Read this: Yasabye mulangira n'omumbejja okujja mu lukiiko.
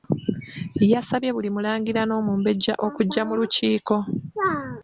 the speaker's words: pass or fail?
fail